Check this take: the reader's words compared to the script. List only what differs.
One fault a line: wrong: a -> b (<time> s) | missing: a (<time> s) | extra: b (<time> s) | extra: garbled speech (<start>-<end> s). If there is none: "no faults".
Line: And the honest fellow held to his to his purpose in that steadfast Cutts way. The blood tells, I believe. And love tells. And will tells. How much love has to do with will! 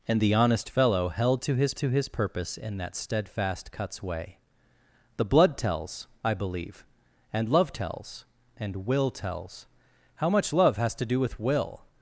no faults